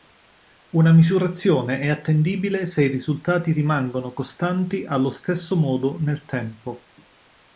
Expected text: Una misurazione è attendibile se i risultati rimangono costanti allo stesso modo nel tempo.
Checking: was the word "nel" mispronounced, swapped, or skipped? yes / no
no